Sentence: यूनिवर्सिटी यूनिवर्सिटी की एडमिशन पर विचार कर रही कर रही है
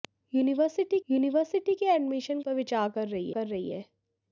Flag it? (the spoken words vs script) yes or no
no